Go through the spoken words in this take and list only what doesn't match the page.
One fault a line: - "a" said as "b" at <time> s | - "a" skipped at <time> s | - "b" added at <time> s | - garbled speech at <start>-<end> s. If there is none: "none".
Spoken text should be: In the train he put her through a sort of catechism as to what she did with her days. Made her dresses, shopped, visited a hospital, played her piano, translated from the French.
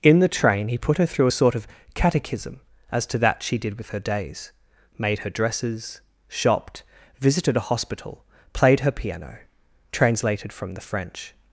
- "what" said as "that" at 3.2 s